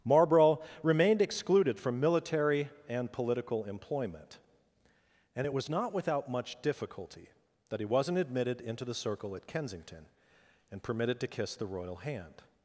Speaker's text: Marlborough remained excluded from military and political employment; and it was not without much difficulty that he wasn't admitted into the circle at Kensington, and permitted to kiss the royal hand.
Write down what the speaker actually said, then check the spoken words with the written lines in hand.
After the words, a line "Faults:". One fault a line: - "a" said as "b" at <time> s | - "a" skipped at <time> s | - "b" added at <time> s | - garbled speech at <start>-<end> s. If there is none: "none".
Marlborough remained excluded from military and political employment; and it was not without much difficulty that he wasn't admitted into the circle at Kensington, and permitted to kiss the royal hand.
Faults:
none